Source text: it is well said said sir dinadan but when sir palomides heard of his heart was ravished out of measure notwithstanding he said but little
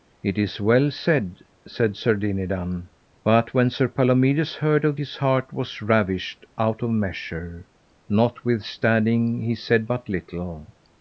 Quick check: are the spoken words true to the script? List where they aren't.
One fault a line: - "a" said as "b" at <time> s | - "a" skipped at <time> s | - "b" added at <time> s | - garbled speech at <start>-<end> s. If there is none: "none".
none